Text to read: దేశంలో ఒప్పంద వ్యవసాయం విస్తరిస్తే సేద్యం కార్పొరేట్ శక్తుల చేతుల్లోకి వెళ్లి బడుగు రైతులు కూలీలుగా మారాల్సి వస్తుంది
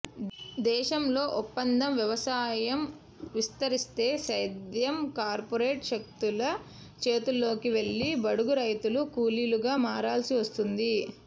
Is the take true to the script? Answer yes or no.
yes